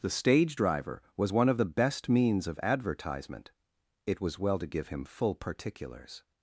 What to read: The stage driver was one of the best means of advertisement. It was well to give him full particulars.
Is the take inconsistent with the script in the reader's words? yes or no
no